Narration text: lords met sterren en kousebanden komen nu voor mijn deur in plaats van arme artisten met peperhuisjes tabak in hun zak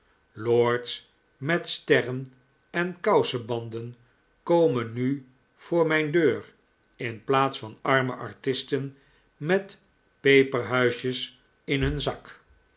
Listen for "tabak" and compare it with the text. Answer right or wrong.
wrong